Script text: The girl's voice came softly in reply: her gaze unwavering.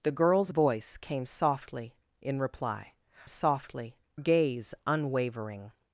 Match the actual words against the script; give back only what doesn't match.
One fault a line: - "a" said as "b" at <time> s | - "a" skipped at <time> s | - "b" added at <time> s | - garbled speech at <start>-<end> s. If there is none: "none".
- "her" said as "softly" at 3.3 s